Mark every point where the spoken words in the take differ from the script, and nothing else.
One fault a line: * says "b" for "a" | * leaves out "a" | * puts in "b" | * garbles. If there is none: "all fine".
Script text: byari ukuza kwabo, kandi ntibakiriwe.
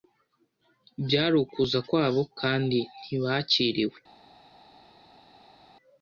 all fine